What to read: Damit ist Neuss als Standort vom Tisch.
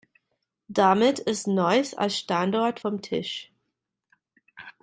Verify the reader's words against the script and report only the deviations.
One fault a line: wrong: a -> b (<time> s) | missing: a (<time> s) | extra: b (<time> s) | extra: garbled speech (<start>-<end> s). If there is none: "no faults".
no faults